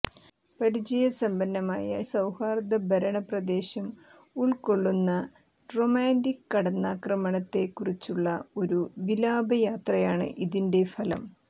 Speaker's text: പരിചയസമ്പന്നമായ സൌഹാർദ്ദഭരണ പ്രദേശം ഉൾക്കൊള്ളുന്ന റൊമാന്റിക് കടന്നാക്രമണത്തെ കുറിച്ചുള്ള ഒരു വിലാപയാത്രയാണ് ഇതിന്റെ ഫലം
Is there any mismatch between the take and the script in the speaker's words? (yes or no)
no